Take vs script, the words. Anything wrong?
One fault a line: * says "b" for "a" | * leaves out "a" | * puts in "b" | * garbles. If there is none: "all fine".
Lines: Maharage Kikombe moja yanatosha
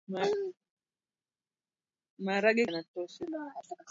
* leaves out "Kikombe moja"